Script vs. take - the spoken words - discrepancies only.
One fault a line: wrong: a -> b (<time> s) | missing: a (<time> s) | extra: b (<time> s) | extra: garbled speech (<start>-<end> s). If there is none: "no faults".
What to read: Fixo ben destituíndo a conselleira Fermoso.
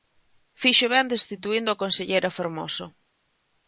no faults